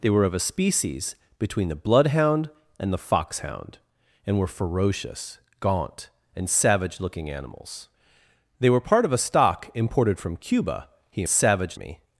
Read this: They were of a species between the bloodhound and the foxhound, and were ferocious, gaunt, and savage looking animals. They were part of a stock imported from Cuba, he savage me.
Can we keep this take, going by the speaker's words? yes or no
yes